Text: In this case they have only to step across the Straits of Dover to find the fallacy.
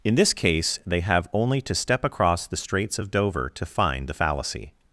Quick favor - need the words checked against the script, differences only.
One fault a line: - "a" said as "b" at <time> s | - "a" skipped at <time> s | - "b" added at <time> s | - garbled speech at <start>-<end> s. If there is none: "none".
none